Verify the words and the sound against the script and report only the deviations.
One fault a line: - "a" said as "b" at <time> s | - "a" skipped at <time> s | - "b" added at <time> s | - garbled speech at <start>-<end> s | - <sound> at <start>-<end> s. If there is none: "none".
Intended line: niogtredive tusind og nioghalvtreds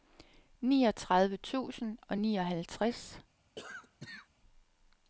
- cough at 3.6-4.3 s